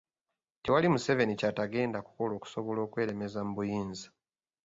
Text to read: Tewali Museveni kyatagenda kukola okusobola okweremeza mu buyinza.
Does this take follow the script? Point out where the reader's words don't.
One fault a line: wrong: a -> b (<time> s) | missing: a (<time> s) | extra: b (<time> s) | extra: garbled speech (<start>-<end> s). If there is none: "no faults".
no faults